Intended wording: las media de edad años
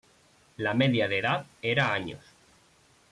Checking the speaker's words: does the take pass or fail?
fail